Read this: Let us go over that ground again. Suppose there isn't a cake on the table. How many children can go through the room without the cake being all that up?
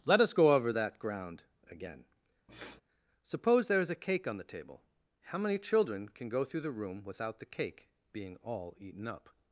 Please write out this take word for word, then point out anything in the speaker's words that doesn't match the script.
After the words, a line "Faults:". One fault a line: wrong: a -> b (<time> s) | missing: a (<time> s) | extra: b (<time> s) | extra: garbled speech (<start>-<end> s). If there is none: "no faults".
Let us go over that ground again. Suppose there is a cake on the table. How many children can go through the room without the cake being all eaten up?
Faults:
wrong: isn't -> is (3.8 s)
wrong: that -> eaten (8.8 s)